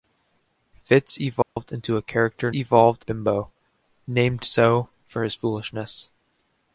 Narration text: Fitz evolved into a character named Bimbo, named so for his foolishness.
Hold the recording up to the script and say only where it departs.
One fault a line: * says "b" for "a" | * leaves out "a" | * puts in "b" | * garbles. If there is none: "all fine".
* says "evolved" for "named"